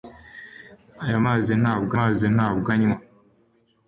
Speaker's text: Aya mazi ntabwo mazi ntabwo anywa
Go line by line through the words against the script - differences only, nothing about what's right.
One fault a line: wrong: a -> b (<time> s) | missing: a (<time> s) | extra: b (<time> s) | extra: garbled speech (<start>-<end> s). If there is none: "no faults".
no faults